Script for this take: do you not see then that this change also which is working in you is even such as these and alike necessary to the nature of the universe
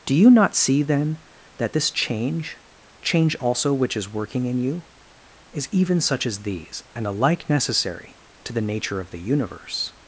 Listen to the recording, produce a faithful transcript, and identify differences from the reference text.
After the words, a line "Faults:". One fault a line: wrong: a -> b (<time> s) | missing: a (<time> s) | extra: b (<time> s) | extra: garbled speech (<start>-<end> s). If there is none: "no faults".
do you not see then that this change change also which is working in you is even such as these and alike necessary to the nature of the universe
Faults:
extra: change (3.0 s)